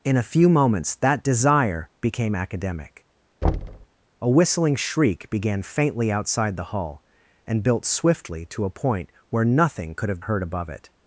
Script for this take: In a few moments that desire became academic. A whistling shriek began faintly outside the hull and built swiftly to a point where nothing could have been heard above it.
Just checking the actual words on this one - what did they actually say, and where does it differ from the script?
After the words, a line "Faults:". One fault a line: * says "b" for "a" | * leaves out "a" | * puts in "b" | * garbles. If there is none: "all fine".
In a few moments that desire became academic. A whistling shriek began faintly outside the hull and built swiftly to a point where nothing could have heard above it.
Faults:
* leaves out "been"